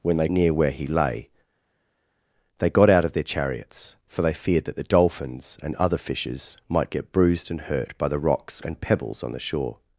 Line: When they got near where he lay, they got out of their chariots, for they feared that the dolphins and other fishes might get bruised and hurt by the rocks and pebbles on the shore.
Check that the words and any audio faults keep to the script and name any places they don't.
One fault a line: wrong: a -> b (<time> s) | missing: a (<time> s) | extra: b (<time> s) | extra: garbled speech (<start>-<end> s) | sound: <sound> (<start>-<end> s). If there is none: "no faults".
missing: got (0.3 s)